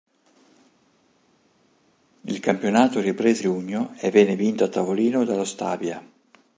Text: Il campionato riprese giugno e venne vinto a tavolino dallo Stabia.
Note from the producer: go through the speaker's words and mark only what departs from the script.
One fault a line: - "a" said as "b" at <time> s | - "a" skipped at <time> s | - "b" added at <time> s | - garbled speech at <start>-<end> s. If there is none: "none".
none